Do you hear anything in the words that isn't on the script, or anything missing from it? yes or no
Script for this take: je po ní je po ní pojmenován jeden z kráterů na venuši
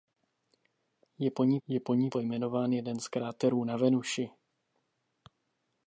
no